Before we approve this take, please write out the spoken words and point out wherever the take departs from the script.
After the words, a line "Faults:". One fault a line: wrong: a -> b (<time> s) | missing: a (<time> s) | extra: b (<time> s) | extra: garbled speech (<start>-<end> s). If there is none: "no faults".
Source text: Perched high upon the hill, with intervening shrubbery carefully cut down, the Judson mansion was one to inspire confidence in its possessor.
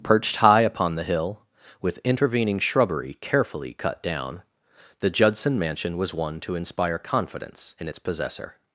Perched high upon the hill, with intervening shrubbery carefully cut down, the Judson mansion was one to inspire confidence in its possessor.
Faults:
no faults